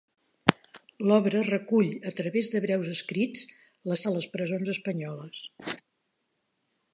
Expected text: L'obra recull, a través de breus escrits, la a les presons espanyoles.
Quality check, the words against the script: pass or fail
pass